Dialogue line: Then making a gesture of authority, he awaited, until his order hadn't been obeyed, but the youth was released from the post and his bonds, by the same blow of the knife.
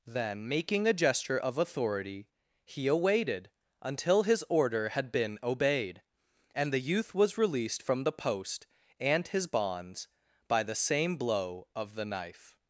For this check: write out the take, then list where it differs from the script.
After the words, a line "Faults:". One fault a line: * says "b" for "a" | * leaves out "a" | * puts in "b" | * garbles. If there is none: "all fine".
Then making a gesture of authority, he awaited, until his order had been obeyed, and the youth was released from the post and his bonds, by the same blow of the knife.
Faults:
* says "had" for "hadn't"
* says "and" for "but"